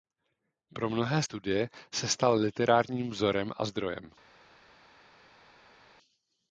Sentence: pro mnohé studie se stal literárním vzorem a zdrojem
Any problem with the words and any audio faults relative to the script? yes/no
no